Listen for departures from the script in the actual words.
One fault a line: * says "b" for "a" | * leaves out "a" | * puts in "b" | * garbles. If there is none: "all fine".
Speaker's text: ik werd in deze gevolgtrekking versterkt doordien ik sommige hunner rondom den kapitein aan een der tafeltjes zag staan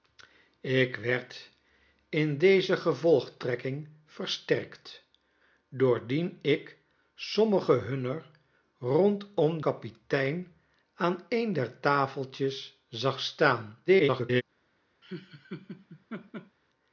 * leaves out "den"
* garbles